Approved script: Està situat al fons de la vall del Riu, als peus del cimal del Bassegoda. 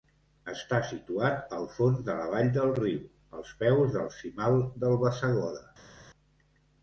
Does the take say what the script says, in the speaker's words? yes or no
yes